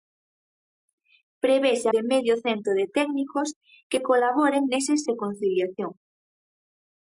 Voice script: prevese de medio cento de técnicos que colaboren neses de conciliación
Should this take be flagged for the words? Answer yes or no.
no